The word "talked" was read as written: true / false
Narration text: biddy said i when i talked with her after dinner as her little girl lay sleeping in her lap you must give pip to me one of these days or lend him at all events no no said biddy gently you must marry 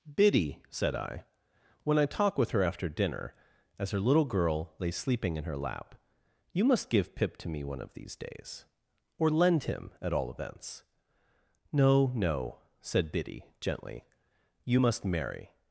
false